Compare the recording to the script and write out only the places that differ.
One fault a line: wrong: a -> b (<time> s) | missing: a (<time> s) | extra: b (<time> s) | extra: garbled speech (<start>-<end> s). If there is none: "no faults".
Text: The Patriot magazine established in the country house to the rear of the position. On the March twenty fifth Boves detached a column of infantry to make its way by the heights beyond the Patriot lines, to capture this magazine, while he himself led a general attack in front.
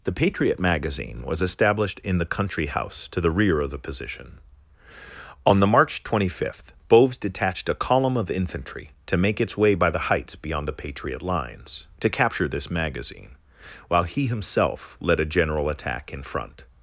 extra: was (1.3 s)